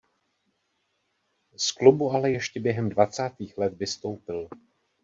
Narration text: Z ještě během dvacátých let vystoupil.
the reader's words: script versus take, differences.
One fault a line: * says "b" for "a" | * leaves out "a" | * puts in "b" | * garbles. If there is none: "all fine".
* puts in "klubu ale"